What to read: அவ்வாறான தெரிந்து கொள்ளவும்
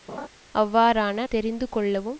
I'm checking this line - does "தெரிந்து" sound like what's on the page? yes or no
yes